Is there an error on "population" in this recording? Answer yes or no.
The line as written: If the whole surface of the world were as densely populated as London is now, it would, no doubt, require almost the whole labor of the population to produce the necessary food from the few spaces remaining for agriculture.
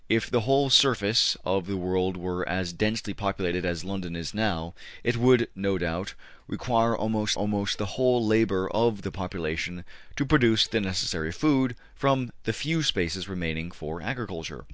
no